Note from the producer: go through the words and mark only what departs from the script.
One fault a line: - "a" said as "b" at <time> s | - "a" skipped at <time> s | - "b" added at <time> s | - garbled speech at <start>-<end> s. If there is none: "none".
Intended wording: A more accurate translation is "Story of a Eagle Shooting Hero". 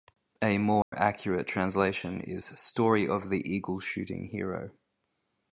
- "a" said as "the" at 3.3 s